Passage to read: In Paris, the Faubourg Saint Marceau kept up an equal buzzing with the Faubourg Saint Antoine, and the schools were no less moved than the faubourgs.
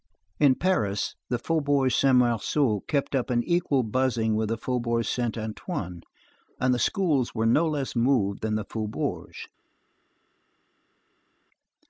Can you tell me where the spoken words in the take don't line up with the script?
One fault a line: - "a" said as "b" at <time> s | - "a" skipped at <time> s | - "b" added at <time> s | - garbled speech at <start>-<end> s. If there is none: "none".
none